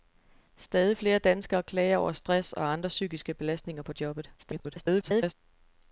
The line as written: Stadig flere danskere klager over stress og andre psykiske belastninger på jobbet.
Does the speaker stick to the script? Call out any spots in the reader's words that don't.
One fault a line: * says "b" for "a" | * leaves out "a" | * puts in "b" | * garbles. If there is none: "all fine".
* garbles